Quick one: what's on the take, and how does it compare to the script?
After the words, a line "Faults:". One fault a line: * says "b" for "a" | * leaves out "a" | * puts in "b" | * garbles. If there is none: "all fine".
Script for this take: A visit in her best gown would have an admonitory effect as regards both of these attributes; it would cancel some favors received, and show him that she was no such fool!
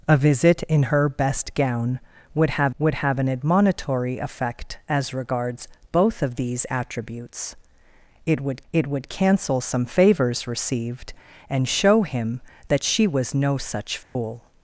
A visit in her best gown would have would have an admonitory effect as regards both of these attributes; it would it would cancel some favors received, and show him that she was no such fool!
Faults:
* puts in "would have"
* puts in "it would"